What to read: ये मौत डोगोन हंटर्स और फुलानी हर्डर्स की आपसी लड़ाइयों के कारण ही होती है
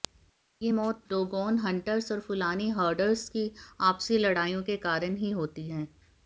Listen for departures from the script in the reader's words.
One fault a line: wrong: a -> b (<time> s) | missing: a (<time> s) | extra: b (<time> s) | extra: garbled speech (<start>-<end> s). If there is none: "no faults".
no faults